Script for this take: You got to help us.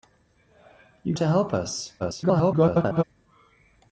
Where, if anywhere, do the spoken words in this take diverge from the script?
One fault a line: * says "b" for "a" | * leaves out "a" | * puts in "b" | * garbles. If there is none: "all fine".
* leaves out "got"
* garbles